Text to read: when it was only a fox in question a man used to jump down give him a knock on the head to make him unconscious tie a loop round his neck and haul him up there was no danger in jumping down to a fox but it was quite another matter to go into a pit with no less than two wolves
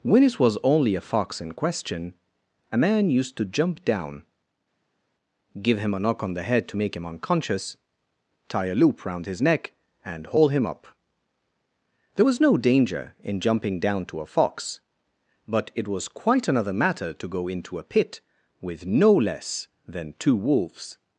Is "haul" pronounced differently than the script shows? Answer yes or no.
no